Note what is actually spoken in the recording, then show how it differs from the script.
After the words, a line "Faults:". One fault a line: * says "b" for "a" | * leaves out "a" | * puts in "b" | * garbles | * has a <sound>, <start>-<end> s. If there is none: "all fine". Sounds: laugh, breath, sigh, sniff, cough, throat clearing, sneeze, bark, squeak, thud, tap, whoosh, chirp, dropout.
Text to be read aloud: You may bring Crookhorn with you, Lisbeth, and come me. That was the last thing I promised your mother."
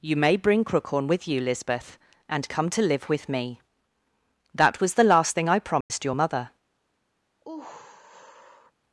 You may bring Crookhorn with you, Lisbeth, and come to live with me. That was the last thing I promised your mother."
Faults:
* puts in "to live with"
* has a dropout, 5.8-5.9 s
* has a sigh, 7.4-8.7 s